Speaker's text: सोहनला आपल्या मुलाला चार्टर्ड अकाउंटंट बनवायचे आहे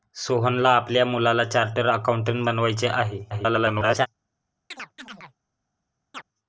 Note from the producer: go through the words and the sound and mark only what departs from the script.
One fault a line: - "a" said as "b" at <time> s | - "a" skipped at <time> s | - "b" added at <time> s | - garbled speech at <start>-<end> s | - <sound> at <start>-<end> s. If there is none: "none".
- garbled speech at 3.3-4.1 s
- chirp at 4.7-5.4 s
- chirp at 6.1-6.2 s